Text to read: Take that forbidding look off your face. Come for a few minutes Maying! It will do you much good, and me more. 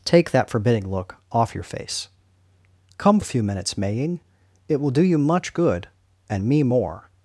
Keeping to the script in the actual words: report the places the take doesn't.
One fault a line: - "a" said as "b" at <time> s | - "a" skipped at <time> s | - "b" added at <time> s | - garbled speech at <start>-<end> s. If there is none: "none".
- "for" skipped at 3.2 s